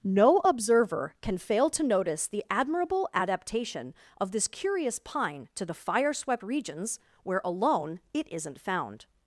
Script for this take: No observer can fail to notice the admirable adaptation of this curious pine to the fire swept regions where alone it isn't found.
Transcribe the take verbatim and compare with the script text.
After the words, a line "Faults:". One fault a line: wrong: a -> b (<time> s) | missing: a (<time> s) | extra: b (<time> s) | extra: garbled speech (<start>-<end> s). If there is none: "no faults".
No observer can fail to notice the admirable adaptation of this curious pine to the fire swept regions where alone it isn't found.
Faults:
no faults